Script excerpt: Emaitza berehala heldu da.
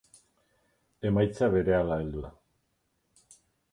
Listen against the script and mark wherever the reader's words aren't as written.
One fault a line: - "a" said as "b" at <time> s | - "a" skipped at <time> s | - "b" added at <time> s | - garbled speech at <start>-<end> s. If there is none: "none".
none